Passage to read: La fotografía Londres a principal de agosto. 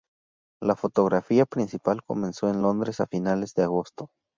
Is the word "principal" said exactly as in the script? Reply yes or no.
no